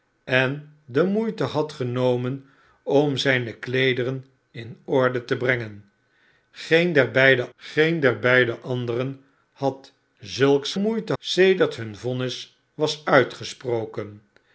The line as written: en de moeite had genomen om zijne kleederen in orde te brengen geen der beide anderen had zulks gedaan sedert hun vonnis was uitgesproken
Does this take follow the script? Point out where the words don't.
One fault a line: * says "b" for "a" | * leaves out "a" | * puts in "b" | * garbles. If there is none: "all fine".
* puts in "geen der beide"
* says "moeite" for "gedaan"